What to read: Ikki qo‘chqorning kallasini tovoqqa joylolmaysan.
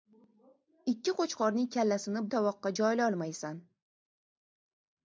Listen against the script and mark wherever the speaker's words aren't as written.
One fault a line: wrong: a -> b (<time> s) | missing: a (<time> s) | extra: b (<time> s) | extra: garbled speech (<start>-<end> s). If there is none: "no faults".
no faults